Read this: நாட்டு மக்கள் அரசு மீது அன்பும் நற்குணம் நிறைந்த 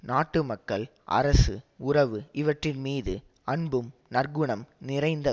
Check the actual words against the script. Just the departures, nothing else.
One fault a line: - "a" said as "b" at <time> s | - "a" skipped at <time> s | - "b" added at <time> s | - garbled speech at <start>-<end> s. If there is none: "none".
- "உறவு இவற்றின்" added at 1.8 s